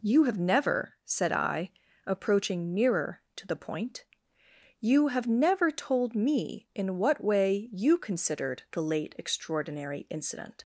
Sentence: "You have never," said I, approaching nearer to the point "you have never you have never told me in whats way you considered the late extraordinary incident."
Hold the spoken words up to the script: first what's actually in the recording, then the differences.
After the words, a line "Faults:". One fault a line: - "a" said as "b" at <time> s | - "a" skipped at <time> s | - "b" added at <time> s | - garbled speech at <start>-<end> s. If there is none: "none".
"You have never," said I, approaching nearer to the point "you have never told me in what way you considered the late extraordinary incident."
Faults:
- "you have never" skipped at 5.7 s
- "whats" said as "what" at 7.0 s